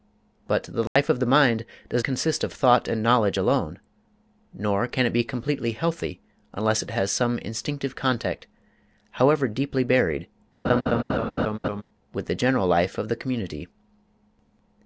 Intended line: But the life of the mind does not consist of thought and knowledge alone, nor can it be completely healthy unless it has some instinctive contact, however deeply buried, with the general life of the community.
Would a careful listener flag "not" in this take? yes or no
yes